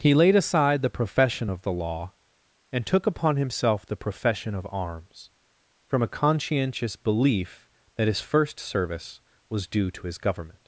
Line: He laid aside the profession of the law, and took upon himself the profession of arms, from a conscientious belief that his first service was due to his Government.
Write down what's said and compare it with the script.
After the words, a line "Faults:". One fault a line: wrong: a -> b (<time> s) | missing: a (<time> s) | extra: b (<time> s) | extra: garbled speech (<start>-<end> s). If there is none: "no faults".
He laid aside the profession of the law, and took upon himself the profession of arms, from a conscientious belief that his first service was due to his Government.
Faults:
no faults